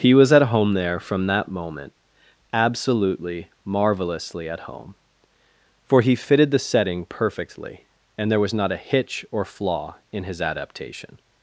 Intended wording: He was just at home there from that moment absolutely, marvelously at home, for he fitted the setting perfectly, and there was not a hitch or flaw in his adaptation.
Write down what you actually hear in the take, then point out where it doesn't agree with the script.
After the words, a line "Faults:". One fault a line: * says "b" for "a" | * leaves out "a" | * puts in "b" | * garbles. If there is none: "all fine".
He was at home there from that moment absolutely, marvelously at home, for he fitted the setting perfectly, and there was not a hitch or flaw in his adaptation.
Faults:
* leaves out "just"